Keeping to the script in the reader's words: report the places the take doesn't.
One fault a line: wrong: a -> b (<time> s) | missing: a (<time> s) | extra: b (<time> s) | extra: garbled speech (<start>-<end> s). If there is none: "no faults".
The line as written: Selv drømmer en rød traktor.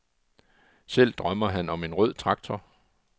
extra: han om (1.5 s)